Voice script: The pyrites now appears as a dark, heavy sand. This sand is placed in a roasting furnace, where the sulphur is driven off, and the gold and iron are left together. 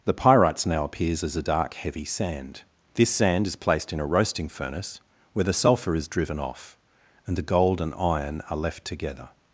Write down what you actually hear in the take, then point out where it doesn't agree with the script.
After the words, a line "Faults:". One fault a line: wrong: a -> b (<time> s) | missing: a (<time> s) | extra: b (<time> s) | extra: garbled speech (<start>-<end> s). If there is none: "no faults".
The pyrites now appears as a dark, heavy sand. This sand is placed in a roasting furnace, where the sulphur is driven off, and the gold and iron are left together.
Faults:
no faults